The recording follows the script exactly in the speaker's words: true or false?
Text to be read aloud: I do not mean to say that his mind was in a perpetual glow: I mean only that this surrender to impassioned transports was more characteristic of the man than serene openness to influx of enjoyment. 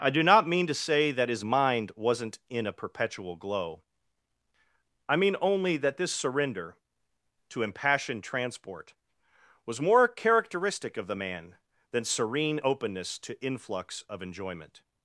false